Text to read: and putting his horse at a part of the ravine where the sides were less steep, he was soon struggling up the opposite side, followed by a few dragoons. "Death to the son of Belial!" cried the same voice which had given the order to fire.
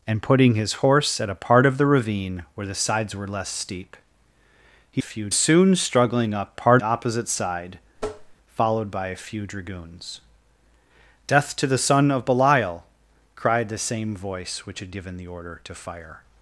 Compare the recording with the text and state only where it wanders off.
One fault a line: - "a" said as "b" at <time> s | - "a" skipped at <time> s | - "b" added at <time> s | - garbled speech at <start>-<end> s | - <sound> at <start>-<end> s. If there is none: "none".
- "was" said as "few" at 5.0 s
- "the" said as "part" at 6.5 s
- tap at 8.0-8.4 s